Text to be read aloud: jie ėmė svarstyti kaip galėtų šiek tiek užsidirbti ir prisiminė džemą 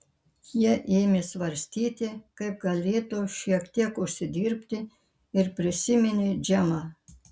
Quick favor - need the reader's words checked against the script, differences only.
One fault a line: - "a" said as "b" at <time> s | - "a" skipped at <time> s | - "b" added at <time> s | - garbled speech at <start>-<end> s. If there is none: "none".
none